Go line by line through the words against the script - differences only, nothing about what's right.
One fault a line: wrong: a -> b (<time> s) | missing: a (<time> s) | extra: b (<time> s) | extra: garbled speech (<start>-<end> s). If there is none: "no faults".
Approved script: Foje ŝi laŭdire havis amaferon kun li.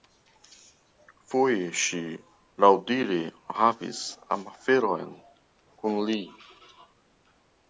no faults